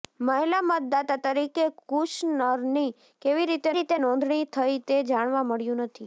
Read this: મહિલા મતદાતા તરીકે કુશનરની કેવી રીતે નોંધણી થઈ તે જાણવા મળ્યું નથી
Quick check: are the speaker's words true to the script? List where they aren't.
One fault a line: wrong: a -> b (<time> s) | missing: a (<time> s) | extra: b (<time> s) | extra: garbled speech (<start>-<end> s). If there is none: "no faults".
extra: રીતે (3.7 s)